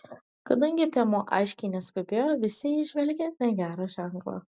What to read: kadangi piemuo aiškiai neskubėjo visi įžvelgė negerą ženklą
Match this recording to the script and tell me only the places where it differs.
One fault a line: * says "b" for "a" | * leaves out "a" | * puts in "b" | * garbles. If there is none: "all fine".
all fine